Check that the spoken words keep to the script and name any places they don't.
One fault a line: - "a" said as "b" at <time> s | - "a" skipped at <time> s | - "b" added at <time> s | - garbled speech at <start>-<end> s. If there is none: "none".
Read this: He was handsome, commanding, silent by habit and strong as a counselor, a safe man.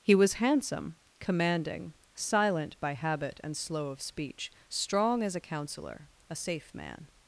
- "slow of speech" added at 3.5 s